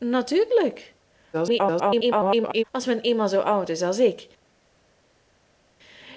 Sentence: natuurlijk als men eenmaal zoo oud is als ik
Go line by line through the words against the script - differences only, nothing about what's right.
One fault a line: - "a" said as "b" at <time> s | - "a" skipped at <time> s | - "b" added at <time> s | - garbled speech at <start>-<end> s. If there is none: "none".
- garbled speech at 1.3-2.6 s